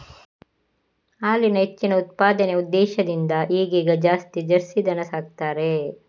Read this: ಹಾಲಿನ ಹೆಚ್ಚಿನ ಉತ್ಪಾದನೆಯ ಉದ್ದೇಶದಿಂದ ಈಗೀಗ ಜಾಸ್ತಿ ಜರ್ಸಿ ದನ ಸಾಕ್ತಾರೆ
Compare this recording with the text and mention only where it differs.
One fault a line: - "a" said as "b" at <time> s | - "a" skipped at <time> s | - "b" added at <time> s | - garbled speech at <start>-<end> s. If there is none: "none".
none